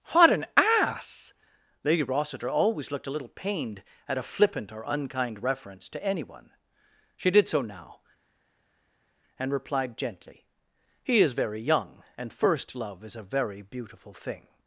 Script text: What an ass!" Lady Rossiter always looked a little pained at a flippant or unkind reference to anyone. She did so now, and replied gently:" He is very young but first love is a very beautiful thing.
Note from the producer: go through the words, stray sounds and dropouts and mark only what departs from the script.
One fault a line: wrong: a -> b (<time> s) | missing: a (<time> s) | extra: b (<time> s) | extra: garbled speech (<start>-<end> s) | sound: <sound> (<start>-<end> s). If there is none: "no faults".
wrong: but -> and (12.2 s)